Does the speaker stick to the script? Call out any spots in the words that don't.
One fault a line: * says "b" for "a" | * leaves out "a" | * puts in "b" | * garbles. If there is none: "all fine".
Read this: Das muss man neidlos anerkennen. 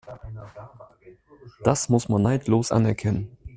all fine